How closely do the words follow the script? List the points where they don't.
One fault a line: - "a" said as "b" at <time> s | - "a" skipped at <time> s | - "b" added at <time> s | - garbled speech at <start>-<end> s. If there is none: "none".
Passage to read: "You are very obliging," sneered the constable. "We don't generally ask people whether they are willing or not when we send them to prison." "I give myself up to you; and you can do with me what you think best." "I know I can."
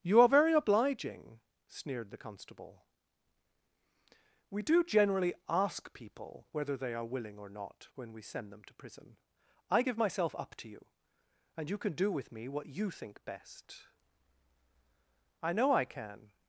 - "don't" said as "do" at 4.6 s